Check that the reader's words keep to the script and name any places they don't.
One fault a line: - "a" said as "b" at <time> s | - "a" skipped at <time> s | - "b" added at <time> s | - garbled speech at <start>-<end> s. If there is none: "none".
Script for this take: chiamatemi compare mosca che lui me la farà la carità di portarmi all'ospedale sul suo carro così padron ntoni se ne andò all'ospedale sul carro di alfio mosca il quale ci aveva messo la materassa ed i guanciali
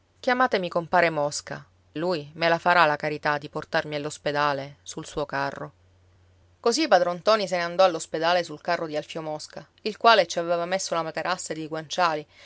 - "che" skipped at 1.6 s